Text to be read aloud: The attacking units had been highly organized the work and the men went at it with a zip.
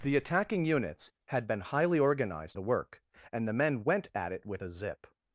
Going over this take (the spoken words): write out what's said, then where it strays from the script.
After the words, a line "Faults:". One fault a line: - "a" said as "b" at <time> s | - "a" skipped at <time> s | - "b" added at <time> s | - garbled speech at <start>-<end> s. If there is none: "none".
The attacking units had been highly organized the work and the men went at it with a zip.
Faults:
none